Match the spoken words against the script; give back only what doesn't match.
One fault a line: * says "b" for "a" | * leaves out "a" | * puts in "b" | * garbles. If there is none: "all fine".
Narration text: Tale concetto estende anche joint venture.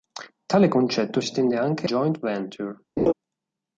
all fine